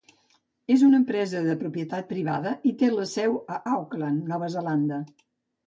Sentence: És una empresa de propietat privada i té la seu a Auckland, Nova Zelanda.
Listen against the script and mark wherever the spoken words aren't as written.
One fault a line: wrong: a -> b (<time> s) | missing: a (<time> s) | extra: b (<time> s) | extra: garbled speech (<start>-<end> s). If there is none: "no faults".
no faults